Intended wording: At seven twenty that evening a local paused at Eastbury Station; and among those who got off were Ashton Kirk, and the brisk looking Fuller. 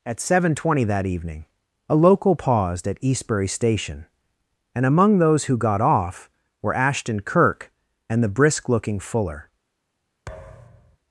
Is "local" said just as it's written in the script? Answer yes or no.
yes